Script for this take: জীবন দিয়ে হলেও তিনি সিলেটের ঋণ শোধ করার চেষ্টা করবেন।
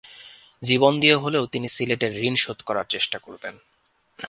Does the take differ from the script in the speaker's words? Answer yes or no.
no